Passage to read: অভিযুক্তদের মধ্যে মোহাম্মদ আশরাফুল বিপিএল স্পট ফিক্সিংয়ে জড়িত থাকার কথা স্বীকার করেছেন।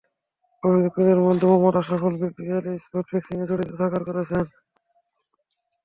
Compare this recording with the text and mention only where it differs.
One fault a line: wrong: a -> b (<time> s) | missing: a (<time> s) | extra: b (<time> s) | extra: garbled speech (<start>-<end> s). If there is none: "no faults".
missing: কথা স্বীকার (4.0 s)